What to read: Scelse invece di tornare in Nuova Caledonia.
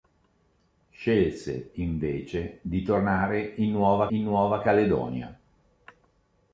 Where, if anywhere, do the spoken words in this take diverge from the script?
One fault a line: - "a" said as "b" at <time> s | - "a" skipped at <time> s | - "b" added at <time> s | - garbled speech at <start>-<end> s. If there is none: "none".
- "in Nuova" added at 4.1 s